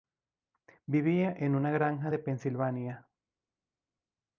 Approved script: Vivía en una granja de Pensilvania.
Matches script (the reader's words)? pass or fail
pass